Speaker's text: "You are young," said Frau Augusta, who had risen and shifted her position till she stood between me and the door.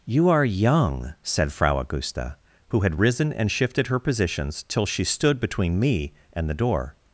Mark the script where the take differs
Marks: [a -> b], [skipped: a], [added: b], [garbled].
"You are young," said Frau Augusta, who had risen and shifted her [position -> positions] till she stood between me and the door.